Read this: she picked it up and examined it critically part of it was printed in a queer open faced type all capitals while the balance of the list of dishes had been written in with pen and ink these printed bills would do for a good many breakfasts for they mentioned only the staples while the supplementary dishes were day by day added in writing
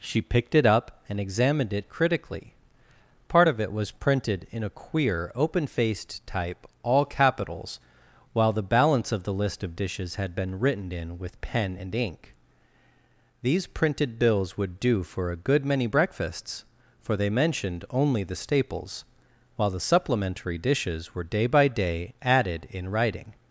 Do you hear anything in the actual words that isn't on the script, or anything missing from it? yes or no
no